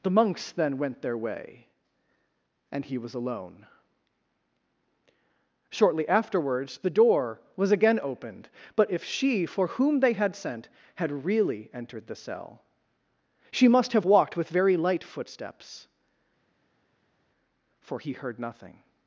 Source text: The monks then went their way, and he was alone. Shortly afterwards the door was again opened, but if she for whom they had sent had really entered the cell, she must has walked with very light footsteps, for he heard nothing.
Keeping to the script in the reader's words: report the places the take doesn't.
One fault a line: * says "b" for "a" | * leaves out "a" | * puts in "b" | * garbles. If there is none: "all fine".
* says "have" for "has"